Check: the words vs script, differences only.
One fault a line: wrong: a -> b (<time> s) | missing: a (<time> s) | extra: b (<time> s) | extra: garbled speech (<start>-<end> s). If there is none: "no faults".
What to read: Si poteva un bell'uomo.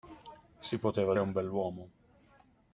no faults